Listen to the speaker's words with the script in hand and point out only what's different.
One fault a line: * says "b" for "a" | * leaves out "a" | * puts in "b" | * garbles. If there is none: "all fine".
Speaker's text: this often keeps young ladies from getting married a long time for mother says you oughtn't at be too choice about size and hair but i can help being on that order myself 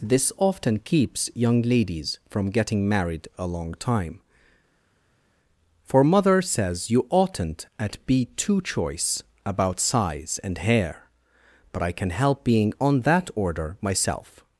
all fine